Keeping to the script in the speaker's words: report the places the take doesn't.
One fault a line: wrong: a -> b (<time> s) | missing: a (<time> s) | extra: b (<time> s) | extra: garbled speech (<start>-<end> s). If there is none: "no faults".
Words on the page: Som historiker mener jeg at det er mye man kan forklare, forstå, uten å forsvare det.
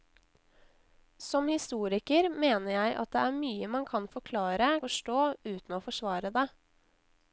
no faults